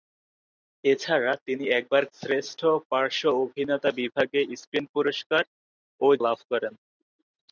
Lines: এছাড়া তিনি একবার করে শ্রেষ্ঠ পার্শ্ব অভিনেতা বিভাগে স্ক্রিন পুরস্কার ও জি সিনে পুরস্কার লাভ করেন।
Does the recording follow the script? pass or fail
fail